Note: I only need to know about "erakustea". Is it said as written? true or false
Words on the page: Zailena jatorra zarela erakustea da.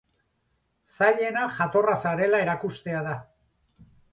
true